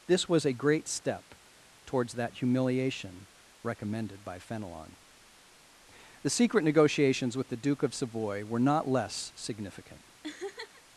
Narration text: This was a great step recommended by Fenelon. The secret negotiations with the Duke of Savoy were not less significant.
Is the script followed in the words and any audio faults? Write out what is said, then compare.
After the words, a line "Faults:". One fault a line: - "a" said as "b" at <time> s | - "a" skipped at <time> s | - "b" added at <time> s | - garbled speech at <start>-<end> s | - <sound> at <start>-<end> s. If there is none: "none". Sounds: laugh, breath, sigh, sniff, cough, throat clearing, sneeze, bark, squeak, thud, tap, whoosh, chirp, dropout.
This was a great step towards that humiliation recommended by Fenelon. The secret negotiations with the Duke of Savoy were not less significant.
Faults:
- "towards that humiliation" added at 1.9 s
- laugh at 10.2-10.8 s